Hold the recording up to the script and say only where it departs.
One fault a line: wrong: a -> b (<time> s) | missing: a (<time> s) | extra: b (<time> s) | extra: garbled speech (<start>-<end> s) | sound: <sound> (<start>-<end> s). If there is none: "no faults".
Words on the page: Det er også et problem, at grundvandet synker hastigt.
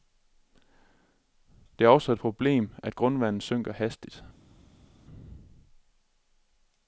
no faults